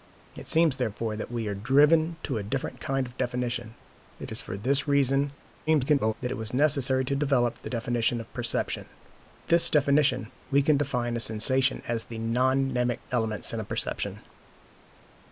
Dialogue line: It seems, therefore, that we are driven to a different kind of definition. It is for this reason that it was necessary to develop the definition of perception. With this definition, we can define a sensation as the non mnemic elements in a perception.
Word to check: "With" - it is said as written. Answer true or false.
false